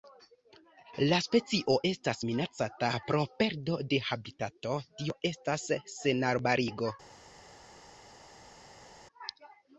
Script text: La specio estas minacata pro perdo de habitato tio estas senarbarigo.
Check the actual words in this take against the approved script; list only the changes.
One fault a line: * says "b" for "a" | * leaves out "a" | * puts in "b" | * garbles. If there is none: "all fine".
all fine